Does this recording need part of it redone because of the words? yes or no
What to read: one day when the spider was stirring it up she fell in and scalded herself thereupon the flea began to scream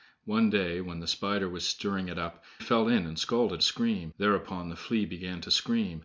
yes